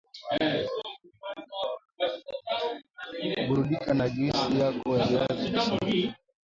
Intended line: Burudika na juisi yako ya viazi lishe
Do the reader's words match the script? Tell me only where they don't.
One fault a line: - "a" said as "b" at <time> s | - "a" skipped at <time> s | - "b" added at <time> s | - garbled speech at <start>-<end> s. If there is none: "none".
none